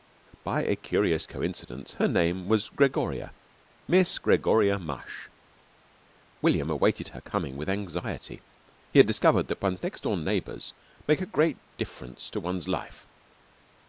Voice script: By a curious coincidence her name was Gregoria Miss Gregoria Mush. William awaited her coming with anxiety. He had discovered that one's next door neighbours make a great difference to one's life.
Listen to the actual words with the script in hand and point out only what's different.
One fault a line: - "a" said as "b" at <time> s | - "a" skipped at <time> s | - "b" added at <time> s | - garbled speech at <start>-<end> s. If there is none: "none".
none